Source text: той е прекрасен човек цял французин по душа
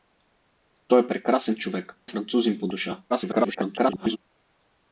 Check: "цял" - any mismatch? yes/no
yes